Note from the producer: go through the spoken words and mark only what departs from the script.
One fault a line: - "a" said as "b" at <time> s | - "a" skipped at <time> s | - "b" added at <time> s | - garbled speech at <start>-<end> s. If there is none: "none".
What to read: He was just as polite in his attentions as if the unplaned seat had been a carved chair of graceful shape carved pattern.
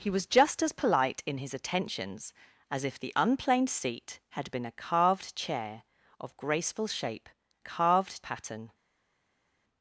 none